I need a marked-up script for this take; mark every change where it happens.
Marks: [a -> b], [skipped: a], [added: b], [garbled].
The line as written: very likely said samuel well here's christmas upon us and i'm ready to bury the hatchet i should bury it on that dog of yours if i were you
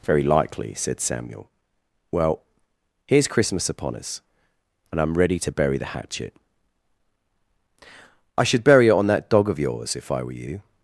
very likely said samuel well here's christmas upon us and i'm ready to bury the hatchet i should bury it on that dog of yours if i were you